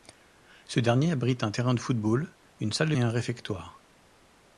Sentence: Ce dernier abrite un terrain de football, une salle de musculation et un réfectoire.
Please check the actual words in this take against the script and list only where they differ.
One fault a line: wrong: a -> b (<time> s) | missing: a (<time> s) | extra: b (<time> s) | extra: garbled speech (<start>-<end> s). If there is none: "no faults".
missing: musculation (3.0 s)